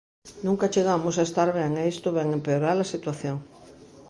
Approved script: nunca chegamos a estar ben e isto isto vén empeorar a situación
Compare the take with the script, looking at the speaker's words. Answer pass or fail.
fail